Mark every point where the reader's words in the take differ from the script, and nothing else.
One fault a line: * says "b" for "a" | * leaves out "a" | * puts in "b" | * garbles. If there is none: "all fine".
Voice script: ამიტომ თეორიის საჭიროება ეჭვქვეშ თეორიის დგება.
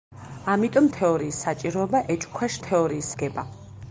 all fine